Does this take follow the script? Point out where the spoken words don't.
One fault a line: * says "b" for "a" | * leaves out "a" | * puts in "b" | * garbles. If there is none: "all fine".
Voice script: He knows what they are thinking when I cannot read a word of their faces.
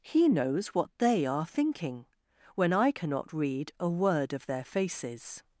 all fine